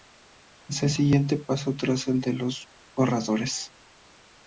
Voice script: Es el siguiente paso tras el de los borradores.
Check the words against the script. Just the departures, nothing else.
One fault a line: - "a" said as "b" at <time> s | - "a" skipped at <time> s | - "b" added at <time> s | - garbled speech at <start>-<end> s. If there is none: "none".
none